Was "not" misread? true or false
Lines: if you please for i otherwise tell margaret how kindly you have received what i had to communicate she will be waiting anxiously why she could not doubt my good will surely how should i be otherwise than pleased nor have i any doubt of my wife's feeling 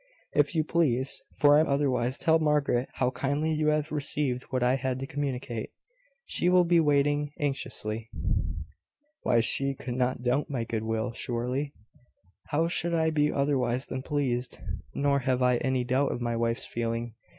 false